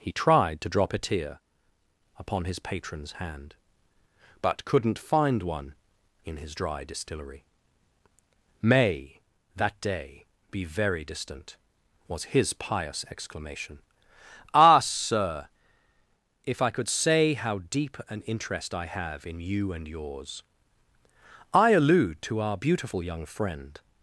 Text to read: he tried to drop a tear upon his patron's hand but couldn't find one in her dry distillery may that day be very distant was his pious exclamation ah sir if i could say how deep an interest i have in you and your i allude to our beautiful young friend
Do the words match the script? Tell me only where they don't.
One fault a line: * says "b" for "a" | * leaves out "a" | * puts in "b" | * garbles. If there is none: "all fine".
* says "his" for "her"
* says "yours" for "your"